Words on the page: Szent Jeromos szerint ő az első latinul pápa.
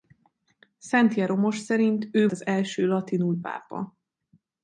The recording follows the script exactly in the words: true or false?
true